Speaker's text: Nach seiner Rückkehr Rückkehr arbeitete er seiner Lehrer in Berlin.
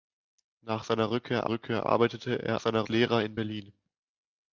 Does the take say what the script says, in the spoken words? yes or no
yes